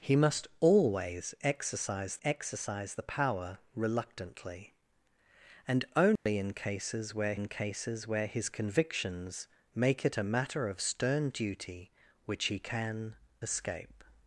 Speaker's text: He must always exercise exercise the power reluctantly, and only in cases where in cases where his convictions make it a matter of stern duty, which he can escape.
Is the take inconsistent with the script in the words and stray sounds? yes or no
yes